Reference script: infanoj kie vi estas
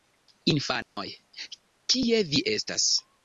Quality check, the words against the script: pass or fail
pass